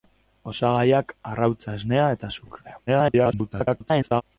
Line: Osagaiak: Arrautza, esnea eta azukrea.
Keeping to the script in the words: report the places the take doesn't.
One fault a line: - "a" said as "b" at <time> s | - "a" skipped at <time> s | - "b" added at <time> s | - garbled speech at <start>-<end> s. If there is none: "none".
- garbled speech at 2.9-4.2 s